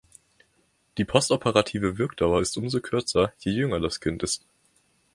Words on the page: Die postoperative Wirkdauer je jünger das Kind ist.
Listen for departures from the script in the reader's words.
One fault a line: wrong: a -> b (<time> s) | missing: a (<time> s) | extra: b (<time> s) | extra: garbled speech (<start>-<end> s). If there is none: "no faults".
extra: ist umso kürzer (2.4 s)